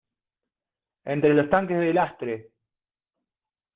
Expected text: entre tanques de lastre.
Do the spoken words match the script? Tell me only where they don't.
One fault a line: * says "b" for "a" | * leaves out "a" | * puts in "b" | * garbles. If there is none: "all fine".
* puts in "los"